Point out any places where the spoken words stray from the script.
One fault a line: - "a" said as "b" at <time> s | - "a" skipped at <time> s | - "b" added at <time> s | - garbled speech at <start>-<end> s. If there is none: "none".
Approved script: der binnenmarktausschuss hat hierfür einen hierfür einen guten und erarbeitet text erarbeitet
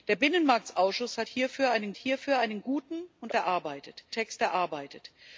none